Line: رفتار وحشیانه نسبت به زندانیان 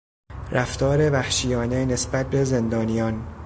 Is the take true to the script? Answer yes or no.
yes